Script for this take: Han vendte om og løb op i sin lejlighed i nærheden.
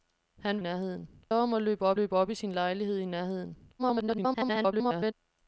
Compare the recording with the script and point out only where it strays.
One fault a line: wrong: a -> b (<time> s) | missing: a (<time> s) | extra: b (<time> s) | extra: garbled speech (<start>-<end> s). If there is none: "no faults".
wrong: vendte -> nærheden (0.6 s)
extra: løb op (1.9 s)
extra: garbled speech (3.8-5.1 s)